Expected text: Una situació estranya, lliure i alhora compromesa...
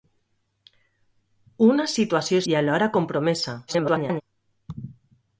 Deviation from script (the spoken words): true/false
true